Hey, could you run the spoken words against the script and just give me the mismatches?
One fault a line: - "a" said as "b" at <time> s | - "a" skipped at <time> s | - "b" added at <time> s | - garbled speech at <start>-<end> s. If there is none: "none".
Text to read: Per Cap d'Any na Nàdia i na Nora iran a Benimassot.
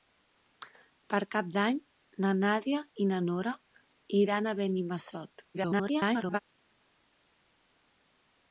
- garbled speech at 5.5-6.4 s